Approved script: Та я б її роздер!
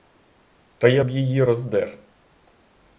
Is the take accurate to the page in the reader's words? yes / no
yes